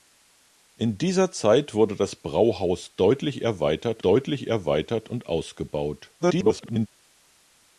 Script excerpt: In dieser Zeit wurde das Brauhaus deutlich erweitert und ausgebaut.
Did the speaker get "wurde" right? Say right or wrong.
right